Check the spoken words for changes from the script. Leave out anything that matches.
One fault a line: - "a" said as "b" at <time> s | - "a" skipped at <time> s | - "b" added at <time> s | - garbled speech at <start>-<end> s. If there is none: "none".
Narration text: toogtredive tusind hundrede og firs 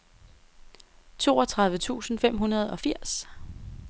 - "fem" added at 2.2 s